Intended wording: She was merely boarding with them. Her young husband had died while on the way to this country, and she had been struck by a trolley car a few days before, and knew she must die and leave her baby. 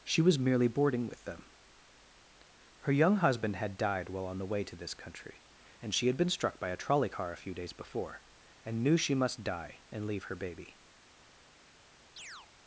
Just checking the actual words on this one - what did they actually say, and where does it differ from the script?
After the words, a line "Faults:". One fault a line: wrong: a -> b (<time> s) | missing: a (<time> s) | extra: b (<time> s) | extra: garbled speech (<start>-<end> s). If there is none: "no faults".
She was merely boarding with them. Her young husband had died while on the way to this country, and she had been struck by a trolley car a few days before, and knew she must die and leave her baby.
Faults:
no faults